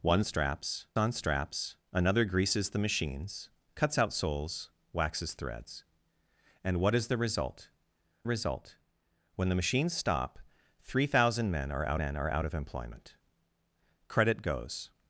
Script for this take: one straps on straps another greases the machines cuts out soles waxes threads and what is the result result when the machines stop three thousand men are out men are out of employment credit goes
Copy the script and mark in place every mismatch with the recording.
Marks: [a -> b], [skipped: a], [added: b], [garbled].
one straps on straps another greases the machines cuts out soles waxes threads and what is the result result when the machines stop three thousand men are out men are out of employment credit goes